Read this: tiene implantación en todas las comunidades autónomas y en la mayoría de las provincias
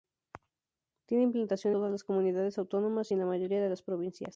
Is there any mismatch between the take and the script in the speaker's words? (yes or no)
yes